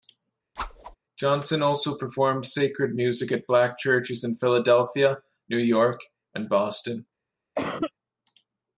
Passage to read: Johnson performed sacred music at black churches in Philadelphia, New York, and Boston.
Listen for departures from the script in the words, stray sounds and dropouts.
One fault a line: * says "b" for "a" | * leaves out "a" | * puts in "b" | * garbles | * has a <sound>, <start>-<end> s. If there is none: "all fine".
* has a whoosh, 0.6-1.0 s
* puts in "also"
* has a cough, 7.6-7.9 s